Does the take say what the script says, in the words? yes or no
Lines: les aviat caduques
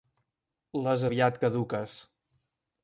yes